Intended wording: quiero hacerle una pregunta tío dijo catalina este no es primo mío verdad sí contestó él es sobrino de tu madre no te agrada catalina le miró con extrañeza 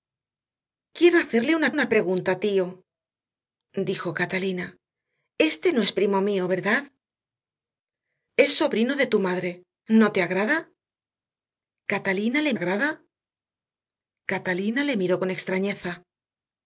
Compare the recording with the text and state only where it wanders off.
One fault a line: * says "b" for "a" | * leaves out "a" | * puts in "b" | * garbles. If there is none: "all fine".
* puts in "una"
* leaves out "sí contestó él"
* puts in "agrada catalina le"